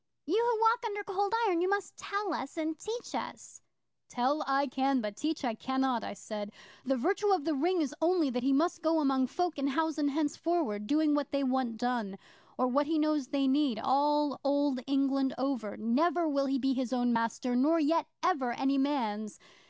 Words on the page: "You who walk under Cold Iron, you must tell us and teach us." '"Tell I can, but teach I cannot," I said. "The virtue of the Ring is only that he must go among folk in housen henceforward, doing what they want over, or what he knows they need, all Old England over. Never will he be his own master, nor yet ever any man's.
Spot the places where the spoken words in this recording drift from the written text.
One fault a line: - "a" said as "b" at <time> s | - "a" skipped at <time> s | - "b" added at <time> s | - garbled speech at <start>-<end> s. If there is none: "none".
- "over" said as "done" at 11.8 s